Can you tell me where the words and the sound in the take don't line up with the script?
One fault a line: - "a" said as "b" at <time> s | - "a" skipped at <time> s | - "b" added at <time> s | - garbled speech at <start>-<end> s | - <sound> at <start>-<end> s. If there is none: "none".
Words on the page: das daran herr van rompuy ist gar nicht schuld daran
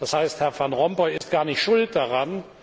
- "daran" said as "heißt" at 0.1 s
- dropout at 1.2-1.2 s